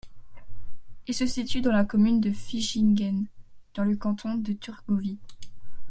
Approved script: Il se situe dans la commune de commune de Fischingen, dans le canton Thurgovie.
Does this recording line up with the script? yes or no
no